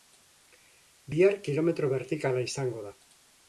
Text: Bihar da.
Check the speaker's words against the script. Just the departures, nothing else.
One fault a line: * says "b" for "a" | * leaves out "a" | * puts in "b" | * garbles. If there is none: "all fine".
* puts in "kilometro bertikala izango"